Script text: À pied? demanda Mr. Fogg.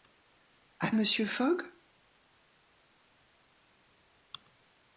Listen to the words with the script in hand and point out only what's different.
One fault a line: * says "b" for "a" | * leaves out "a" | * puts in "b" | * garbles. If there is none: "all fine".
* leaves out "pied demanda"